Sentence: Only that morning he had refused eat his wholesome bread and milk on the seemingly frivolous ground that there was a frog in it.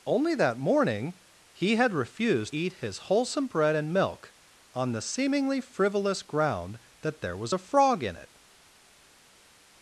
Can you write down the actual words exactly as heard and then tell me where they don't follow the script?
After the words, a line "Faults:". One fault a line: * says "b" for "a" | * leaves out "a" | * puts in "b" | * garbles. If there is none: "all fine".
Only that morning he had refused eat his wholesome bread and milk on the seemingly frivolous ground that there was a frog in it.
Faults:
all fine